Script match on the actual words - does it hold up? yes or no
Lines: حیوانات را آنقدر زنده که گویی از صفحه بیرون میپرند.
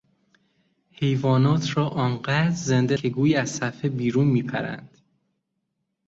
yes